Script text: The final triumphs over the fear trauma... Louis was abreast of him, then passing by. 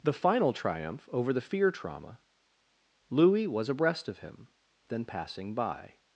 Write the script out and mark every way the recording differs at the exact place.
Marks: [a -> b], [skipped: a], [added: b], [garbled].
The final [triumphs -> triumph] over the fear trauma... Louis was abreast of him, then passing by.